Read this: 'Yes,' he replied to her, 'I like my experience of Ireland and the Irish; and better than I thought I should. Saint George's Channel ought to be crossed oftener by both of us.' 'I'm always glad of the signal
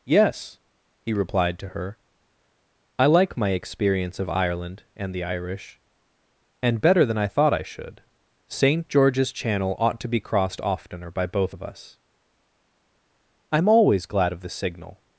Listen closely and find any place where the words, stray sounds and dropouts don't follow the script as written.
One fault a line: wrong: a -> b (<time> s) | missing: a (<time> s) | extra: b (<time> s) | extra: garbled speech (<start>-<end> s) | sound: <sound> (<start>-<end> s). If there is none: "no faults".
no faults